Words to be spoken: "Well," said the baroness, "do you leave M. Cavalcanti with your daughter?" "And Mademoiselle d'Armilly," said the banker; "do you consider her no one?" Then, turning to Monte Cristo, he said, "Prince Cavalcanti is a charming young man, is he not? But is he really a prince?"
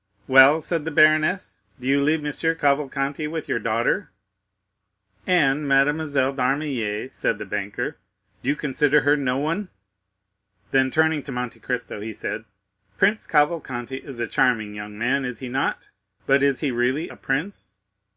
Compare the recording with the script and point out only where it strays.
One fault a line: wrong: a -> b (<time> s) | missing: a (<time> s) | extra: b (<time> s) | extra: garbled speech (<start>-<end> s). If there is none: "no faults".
no faults